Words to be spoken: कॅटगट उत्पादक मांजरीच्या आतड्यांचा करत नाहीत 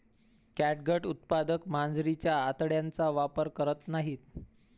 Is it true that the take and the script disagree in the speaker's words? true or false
true